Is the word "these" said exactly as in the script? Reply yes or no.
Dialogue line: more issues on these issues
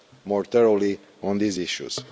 yes